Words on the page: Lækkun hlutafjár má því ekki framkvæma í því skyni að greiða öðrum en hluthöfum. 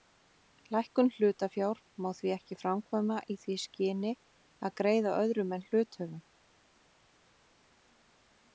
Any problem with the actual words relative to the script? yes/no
no